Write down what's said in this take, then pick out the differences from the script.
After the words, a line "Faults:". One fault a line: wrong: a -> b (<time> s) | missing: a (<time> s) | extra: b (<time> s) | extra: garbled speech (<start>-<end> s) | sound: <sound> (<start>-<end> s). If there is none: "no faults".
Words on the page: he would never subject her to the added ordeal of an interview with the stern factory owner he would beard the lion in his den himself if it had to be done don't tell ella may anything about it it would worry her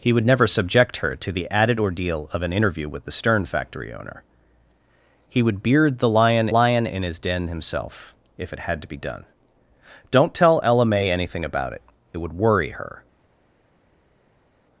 he would never subject her to the added ordeal of an interview with the stern factory owner he would beard the lion lion in his den himself if it had to be done don't tell ella may anything about it it would worry her
Faults:
extra: lion (6.5 s)